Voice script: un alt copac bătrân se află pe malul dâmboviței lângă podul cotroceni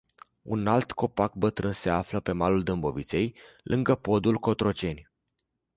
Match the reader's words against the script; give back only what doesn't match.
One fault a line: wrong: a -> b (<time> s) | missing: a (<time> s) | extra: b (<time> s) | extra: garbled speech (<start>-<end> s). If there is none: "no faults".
no faults